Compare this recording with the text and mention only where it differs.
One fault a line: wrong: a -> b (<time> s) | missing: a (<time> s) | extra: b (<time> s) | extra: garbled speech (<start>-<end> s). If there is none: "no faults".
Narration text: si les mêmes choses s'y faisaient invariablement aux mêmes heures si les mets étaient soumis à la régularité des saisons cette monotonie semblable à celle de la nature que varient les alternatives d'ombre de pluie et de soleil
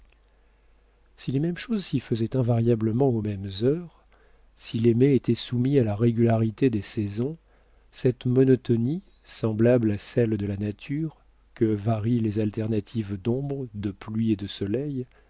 no faults